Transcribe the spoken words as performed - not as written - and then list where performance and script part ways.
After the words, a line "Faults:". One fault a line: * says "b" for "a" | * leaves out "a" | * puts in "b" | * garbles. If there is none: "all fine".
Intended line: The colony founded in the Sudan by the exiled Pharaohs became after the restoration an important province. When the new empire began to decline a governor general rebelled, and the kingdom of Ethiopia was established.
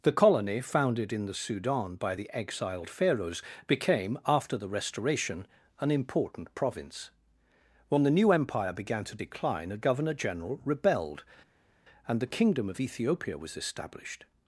The colony founded in the Sudan by the exiled Pharaohs became after the restoration an important province. When the new empire began to decline a governor general rebelled, and the kingdom of Ethiopia was established.
Faults:
all fine